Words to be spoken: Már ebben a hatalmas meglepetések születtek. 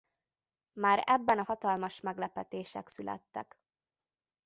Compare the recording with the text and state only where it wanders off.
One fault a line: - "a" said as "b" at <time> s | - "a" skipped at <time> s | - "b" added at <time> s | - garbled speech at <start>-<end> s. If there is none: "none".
none